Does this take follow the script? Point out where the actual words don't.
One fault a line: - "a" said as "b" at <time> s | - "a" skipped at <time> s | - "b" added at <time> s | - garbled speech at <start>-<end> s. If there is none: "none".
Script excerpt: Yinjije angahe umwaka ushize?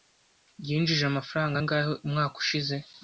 - "amafaranga" added at 1.1 s